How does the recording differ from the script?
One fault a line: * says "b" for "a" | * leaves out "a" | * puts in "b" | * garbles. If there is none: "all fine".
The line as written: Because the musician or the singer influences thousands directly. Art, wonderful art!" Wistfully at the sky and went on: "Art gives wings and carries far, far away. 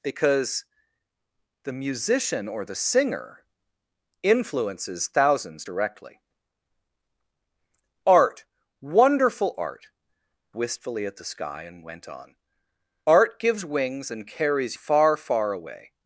all fine